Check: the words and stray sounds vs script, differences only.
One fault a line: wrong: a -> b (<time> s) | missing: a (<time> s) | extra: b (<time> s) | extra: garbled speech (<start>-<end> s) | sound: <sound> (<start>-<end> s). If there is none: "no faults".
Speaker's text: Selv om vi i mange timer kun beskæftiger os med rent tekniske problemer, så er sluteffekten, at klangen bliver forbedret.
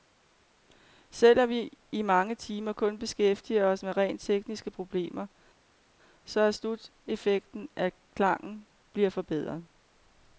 no faults